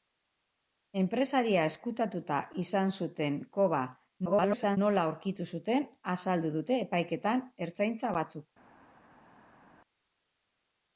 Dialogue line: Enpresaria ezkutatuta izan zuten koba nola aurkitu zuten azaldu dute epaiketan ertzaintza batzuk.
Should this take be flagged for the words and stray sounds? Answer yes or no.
yes